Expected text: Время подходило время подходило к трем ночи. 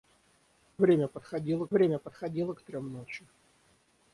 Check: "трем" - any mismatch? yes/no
no